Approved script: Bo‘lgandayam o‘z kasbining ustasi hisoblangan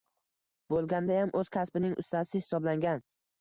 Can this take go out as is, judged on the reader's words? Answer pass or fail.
pass